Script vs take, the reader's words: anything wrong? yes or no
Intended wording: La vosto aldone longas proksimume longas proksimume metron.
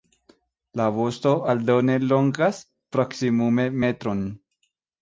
yes